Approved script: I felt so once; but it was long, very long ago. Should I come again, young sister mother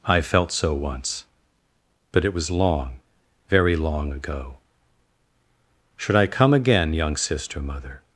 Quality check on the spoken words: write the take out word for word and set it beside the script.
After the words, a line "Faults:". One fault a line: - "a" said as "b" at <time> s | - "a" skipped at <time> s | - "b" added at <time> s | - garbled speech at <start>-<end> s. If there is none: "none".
I felt so once; but it was long, very long ago. Should I come again, young sister mother
Faults:
none